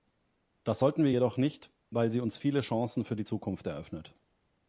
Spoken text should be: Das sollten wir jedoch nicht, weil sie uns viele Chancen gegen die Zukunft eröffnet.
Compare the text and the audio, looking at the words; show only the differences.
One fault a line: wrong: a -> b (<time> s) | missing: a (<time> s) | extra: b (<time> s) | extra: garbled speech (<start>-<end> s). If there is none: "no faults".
wrong: gegen -> für (3.0 s)